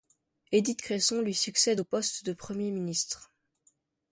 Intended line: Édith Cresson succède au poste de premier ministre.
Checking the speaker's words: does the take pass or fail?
fail